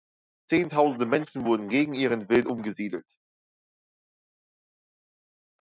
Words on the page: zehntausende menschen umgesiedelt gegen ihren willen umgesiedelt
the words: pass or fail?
fail